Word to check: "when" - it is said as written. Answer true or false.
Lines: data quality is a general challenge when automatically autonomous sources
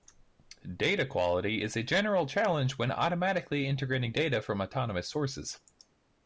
true